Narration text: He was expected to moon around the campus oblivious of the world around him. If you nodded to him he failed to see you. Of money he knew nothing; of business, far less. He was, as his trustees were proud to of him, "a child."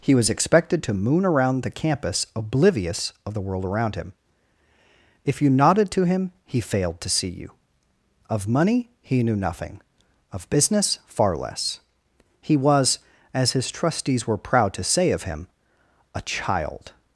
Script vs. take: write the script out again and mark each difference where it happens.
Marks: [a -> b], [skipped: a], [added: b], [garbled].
He was expected to moon around the campus oblivious of the world around him. If you nodded to him he failed to see you. Of money he knew nothing; of business, far less. He was, as his trustees were proud to [added: say] of him, "a child."